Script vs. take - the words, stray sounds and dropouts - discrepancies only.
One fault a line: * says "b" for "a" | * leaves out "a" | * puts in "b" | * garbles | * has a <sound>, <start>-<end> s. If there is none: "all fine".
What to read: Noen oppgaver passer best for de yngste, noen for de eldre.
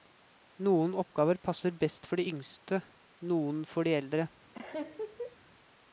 * has a laugh, 4.5-5.4 s